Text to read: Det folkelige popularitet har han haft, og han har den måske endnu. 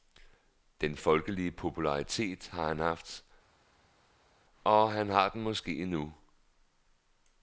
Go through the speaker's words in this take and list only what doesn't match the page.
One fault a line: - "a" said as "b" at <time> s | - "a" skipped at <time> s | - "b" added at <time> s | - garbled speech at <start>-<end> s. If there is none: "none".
- "Det" said as "Den" at 0.8 s